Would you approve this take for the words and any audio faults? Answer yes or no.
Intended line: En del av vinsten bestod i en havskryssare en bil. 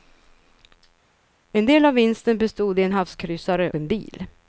yes